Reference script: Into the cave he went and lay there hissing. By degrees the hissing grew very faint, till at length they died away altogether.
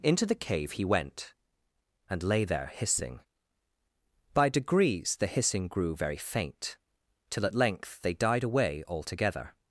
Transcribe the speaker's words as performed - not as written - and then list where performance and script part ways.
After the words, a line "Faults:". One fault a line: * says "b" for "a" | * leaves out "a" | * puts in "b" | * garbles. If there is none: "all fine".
Into the cave he went and lay there hissing. By degrees the hissing grew very faint, till at length they died away altogether.
Faults:
all fine